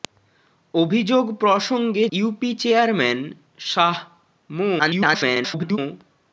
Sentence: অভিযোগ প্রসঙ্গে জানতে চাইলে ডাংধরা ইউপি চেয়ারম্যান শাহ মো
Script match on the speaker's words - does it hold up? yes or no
no